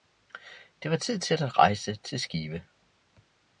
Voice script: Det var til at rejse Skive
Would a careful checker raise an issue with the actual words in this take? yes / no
yes